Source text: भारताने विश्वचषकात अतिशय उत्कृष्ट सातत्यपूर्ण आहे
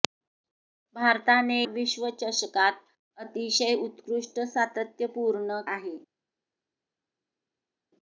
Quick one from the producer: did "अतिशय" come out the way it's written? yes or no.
yes